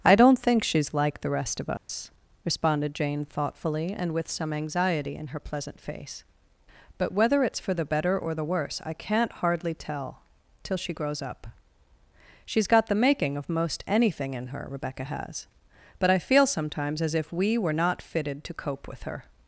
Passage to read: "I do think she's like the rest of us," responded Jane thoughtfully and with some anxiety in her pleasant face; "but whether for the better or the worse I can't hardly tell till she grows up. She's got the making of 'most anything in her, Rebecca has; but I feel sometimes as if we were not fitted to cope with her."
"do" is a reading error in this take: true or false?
true